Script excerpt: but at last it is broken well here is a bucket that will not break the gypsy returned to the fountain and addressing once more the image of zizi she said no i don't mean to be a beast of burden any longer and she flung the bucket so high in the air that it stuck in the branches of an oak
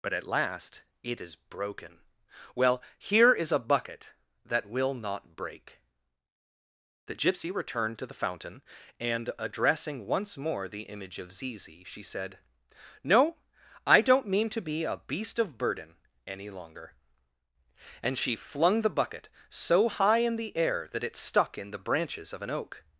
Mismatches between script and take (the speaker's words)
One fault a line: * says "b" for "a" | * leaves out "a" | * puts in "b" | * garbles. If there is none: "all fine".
all fine